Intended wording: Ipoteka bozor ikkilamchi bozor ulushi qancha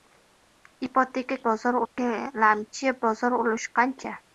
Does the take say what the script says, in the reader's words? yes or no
yes